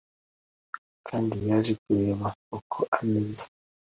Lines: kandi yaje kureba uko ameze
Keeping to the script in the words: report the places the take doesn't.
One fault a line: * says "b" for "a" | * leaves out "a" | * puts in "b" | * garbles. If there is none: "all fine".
all fine